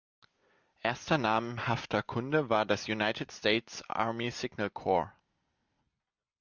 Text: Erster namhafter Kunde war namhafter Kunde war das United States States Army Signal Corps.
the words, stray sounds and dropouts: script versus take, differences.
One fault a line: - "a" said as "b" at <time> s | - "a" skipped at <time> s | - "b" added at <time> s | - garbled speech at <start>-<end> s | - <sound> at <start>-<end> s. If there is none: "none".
- "namhafter Kunde war" skipped at 2.6 s
- "States" skipped at 3.8 s